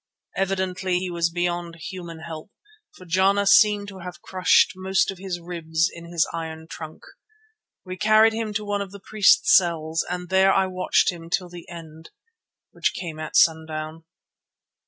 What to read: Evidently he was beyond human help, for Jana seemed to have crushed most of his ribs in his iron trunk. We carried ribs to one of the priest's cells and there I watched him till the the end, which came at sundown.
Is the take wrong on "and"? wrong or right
right